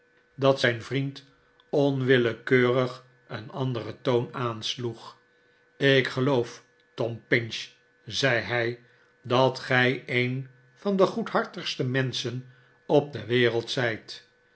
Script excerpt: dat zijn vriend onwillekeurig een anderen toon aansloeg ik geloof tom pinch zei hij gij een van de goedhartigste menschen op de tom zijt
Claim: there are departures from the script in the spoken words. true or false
true